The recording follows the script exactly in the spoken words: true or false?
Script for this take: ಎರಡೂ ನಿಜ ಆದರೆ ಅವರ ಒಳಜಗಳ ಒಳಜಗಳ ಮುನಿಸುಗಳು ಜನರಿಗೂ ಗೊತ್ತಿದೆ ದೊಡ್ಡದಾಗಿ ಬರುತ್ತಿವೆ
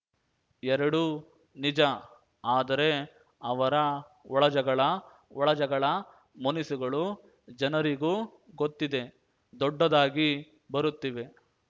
true